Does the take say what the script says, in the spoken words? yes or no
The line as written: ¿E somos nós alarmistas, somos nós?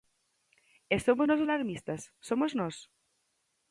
yes